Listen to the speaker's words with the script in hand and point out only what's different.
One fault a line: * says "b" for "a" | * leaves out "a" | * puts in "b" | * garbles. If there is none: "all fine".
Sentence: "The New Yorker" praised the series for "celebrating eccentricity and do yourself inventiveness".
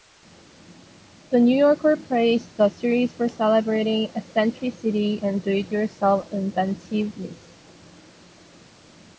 * puts in "it"